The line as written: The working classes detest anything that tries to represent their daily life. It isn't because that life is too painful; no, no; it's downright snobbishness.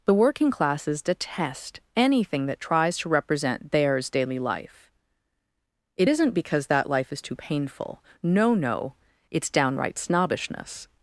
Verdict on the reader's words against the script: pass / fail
fail